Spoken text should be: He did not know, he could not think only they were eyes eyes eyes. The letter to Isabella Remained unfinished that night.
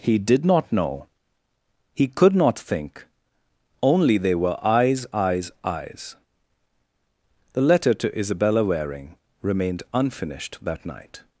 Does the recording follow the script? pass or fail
fail